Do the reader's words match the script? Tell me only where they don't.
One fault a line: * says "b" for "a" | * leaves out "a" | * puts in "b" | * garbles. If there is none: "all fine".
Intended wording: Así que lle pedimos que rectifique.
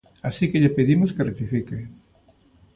all fine